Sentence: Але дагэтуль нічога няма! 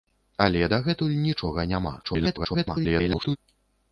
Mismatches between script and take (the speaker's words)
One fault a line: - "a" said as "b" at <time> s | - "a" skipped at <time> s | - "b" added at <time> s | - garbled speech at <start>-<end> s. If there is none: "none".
- garbled speech at 2.0-3.4 s